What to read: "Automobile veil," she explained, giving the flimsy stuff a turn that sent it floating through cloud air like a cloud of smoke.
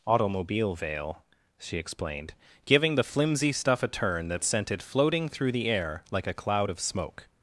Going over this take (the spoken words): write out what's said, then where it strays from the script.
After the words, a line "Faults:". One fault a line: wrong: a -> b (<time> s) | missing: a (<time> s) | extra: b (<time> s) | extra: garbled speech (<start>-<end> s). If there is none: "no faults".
"Automobile veil," she explained, giving the flimsy stuff a turn that sent it floating through the air like a cloud of smoke.
Faults:
wrong: cloud -> the (5.5 s)